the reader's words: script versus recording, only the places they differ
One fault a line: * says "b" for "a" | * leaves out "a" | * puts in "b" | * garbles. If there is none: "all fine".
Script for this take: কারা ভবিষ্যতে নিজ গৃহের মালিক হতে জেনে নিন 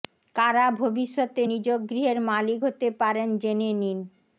* puts in "পারেন"